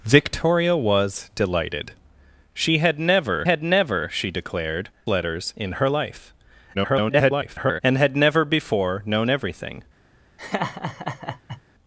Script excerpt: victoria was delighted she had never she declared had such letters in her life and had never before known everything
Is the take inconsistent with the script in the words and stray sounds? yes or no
yes